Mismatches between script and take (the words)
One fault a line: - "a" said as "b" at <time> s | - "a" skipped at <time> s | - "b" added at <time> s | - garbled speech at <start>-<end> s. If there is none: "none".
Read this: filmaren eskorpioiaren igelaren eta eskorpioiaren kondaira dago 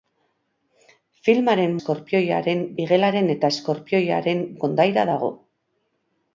none